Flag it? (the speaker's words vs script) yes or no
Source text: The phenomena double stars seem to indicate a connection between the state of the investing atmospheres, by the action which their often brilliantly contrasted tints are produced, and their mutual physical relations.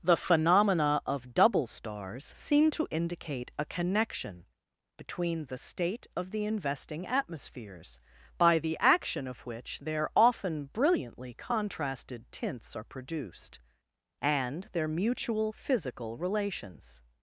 yes